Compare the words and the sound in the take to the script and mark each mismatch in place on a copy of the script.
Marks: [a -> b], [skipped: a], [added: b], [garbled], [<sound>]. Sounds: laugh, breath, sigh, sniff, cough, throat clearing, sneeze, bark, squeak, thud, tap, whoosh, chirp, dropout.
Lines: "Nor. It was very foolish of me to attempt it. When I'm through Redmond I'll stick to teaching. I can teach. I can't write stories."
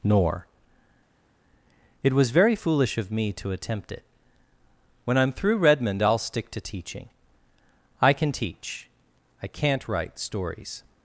"Nor. It was very foolish of me to attempt it. When I'm through Redmond I'll stick to teaching. I can teach. I can't write stories."